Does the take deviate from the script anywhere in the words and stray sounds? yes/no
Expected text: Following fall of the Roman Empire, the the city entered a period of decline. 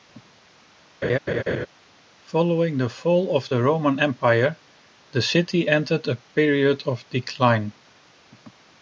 yes